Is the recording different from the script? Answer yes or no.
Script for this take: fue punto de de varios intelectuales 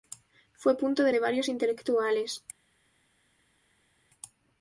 no